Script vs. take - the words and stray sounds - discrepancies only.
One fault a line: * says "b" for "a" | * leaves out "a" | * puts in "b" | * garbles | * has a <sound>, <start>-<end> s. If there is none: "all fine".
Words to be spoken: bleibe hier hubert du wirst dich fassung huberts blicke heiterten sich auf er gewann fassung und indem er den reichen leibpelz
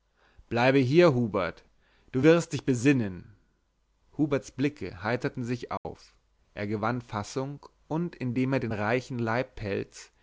* says "besinnen" for "fassung"
* has a dropout, 5.8-5.8 s